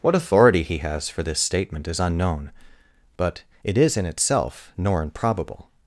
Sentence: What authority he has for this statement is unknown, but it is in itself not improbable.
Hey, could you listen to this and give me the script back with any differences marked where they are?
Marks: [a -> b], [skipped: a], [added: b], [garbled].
What authority he has for this statement is unknown, but it is in itself [not -> nor] improbable.